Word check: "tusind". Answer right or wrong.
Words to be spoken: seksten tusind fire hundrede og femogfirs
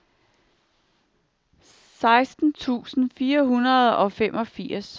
right